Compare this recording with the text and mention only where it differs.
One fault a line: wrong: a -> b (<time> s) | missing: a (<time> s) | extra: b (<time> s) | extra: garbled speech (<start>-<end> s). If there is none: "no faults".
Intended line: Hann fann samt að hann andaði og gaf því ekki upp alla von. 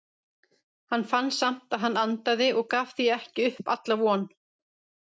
no faults